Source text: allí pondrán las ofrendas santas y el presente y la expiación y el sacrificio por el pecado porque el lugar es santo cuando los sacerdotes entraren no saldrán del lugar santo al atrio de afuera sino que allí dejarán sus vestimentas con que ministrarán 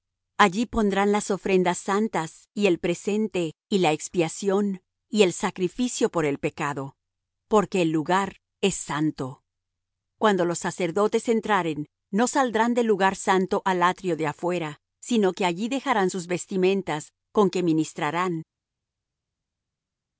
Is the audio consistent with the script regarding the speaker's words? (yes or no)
yes